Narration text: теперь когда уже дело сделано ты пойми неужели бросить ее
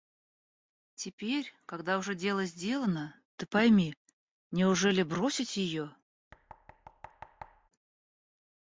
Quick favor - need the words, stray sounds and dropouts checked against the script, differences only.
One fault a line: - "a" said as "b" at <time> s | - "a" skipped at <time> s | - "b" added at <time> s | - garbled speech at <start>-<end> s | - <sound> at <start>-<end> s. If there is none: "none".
- thud at 6.3-7.7 s